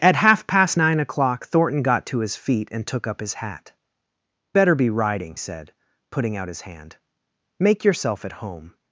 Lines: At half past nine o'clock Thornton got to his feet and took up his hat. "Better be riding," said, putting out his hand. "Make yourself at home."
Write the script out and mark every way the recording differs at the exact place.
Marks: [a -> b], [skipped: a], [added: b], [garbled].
At half past nine o'clock Thornton got to his feet and took up his hat. "Better be riding," said, putting out his hand. "Make yourself at home."